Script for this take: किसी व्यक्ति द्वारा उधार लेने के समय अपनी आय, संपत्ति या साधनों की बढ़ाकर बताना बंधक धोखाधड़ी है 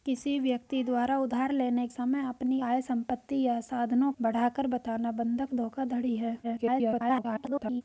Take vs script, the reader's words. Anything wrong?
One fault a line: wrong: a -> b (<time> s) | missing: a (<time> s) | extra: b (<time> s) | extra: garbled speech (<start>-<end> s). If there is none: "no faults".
missing: के (1.9 s)
missing: की (4.1 s)
extra: garbled speech (6.4-7.8 s)